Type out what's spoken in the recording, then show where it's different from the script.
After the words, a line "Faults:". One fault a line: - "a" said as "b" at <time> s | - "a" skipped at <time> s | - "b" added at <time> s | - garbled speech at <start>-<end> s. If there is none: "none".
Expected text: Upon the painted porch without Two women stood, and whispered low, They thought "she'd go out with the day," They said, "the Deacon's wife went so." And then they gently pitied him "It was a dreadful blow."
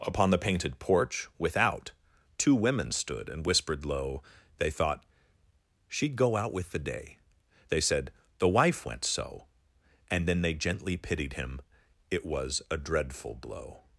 Upon the painted porch without Two women stood, and whispered low, They thought "she'd go out with the day," They said, "the wife went so." And then they gently pitied him "It was a dreadful blow."
Faults:
- "Deacon's" skipped at 8.5 s